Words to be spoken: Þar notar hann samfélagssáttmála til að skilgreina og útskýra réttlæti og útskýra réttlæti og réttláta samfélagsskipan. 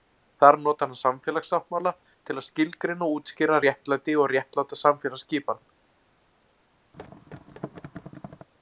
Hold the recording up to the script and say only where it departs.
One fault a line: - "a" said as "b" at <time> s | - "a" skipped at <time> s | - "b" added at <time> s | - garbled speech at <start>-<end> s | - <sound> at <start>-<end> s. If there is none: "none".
- "útskýra réttlæti og" skipped at 4.3 s
- thud at 6.9-8.5 s